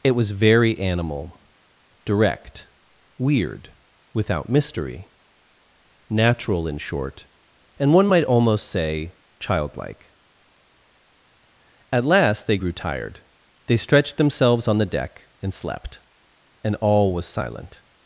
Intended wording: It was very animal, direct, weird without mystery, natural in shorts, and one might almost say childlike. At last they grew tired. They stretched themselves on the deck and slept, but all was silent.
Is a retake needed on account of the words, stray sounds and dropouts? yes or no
yes